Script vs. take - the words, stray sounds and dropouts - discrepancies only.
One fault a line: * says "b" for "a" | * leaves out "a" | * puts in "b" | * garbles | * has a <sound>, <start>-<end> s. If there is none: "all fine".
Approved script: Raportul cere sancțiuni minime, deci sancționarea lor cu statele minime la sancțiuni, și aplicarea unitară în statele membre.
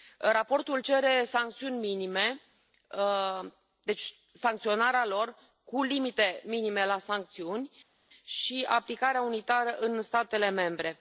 * says "limite" for "statele"